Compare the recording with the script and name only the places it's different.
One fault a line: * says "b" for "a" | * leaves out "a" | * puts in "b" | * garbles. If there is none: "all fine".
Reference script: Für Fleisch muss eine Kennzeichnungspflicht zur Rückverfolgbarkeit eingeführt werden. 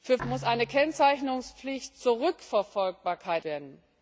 * leaves out "Fleisch"
* leaves out "eingeführt"